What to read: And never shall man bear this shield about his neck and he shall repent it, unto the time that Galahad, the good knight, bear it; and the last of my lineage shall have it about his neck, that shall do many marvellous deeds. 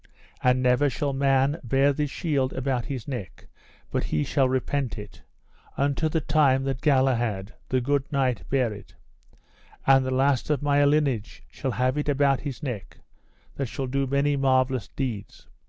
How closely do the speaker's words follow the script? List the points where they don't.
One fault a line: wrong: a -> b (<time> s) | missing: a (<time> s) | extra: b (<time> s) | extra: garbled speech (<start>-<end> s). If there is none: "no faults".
wrong: and -> but (3.9 s)